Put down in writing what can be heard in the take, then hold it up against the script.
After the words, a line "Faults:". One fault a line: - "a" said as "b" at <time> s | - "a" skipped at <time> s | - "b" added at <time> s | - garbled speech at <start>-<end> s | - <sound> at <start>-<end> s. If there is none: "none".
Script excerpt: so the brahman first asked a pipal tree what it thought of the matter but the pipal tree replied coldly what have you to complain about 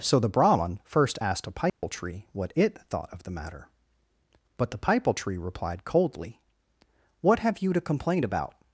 so the brahman first asked a pipal tree what it thought of the matter but the pipal tree replied coldly what have you to complain about
Faults:
- dropout at 1.7-1.8 s